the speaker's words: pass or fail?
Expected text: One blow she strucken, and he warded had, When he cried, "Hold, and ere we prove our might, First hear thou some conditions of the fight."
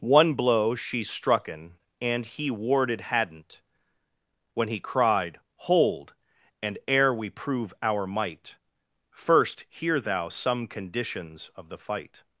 fail